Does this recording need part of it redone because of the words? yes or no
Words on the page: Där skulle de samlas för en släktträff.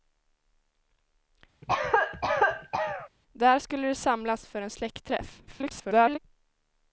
yes